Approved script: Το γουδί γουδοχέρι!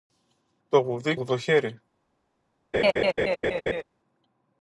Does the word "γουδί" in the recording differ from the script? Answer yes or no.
no